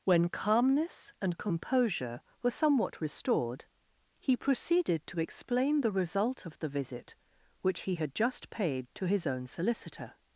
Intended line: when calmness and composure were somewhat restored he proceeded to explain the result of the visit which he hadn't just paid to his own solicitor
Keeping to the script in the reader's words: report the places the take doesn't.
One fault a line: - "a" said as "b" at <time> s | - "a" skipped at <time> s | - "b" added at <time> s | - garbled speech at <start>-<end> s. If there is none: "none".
- "hadn't" said as "had" at 8.0 s